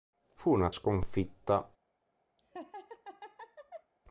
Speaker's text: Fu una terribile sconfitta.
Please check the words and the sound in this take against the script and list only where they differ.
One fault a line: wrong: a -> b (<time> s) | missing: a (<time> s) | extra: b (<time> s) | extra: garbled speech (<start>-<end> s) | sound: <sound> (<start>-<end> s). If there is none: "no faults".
missing: terribile (0.7 s)
sound: laugh (2.4-3.9 s)